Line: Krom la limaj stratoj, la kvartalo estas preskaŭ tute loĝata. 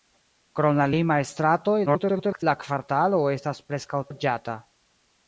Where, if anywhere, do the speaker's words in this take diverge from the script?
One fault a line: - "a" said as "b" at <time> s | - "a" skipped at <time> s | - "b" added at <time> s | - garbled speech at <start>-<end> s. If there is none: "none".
- garbled speech at 1.9-2.4 s
- "tute" skipped at 4.0 s